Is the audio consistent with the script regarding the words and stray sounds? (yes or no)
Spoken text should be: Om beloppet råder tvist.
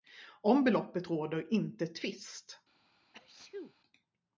no